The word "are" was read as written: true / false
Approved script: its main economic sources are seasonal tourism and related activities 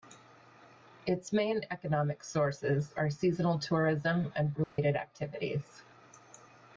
true